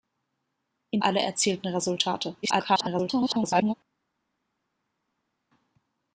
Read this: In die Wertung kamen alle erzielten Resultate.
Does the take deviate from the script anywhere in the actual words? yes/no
yes